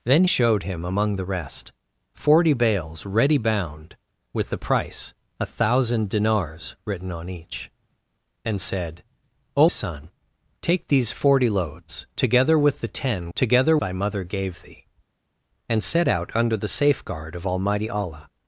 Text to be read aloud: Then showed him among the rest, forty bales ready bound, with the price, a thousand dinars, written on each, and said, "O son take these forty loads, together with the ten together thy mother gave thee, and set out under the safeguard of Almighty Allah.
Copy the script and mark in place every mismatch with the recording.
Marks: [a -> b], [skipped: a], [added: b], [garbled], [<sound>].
Then showed him among the rest, forty bales ready bound, with the price, a thousand dinars, written on each, and said, "O son take these forty loads, together with the ten together thy mother gave thee, and set out under the safeguard of Almighty Allah.